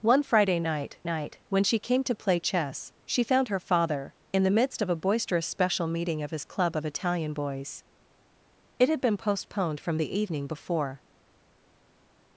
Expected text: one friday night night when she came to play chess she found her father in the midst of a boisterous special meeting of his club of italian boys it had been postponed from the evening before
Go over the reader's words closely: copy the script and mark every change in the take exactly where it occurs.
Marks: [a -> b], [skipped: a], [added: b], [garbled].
one friday night night when she came to play chess she found her father in the midst of a boisterous special meeting of his club of italian boys it had been postponed from the evening before